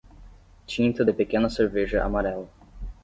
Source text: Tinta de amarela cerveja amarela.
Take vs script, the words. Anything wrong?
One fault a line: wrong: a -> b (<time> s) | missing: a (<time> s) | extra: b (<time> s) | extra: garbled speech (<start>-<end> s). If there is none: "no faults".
wrong: amarela -> pequena (1.1 s)